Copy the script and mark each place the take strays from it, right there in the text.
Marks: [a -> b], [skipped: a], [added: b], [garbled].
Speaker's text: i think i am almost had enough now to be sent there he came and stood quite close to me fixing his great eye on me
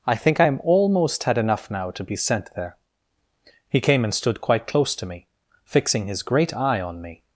i think i am almost had enough now to be sent there he came and stood quite close to me fixing his great eye on me